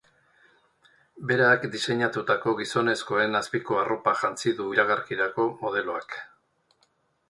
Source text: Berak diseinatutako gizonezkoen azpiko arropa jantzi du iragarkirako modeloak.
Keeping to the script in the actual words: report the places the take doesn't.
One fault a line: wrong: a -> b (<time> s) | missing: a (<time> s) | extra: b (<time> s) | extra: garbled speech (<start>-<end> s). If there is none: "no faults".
no faults